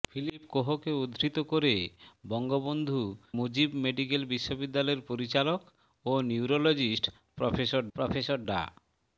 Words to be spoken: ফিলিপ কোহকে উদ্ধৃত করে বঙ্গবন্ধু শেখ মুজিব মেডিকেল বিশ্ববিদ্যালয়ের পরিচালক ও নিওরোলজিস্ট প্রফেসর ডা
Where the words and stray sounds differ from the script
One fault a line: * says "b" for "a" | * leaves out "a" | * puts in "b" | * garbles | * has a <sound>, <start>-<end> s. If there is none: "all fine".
* leaves out "শেখ"
* puts in "প্রফেসর"